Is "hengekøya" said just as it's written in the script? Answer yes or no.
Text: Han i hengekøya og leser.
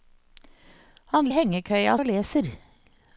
yes